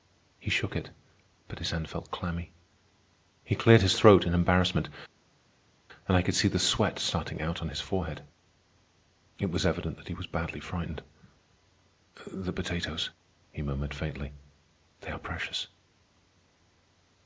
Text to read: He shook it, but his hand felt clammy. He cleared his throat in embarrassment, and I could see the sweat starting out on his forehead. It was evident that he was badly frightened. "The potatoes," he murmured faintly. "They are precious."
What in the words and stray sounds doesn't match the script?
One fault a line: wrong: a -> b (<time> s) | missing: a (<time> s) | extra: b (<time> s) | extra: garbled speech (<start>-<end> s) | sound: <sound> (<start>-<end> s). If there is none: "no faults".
no faults